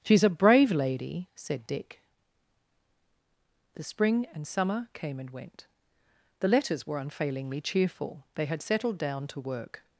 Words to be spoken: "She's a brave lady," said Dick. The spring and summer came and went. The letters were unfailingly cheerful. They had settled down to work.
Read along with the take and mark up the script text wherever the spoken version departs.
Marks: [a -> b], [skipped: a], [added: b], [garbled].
"She's a brave lady," said Dick. The spring and summer came and went. The letters were unfailingly cheerful. They had settled down to work.